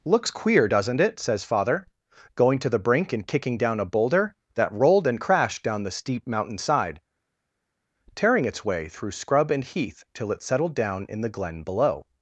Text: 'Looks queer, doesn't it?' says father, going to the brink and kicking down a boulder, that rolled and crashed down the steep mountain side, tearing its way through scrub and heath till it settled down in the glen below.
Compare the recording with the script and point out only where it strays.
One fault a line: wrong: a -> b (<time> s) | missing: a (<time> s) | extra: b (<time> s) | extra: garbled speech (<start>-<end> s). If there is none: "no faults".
no faults